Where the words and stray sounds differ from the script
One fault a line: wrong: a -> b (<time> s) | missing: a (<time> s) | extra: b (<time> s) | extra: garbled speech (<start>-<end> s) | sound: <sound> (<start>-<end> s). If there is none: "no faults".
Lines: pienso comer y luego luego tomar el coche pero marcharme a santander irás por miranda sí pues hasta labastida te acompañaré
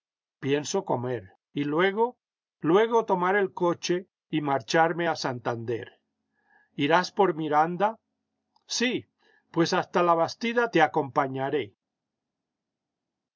wrong: pero -> y (4.3 s)